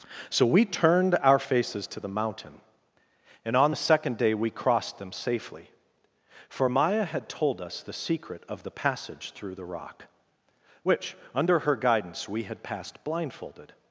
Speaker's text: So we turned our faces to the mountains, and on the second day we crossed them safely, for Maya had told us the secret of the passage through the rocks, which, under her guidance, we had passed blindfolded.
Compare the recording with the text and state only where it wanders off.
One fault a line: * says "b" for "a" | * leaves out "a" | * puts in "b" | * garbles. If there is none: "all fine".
* says "mountain" for "mountains"
* says "rock" for "rocks"